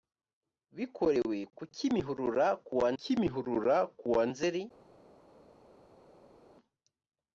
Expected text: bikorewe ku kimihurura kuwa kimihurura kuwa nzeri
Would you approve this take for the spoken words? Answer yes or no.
yes